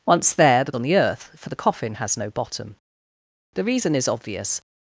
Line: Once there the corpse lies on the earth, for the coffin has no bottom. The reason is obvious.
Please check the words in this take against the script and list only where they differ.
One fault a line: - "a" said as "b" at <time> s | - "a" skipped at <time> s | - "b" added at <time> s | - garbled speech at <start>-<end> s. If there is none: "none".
- "corpse lies" skipped at 0.7 s